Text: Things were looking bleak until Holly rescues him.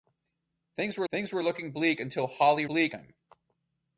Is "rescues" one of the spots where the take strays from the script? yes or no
yes